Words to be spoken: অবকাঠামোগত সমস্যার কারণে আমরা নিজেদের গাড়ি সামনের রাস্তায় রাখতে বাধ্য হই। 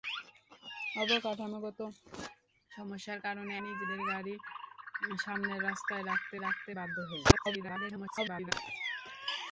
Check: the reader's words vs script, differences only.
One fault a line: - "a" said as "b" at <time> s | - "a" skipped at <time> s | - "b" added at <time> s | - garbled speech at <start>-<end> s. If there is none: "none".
- "আমরা" skipped at 3.5 s
- "রাখতে" added at 6.4 s
- garbled speech at 7.3-8.5 s